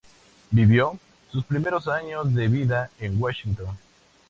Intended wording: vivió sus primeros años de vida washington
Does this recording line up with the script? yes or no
no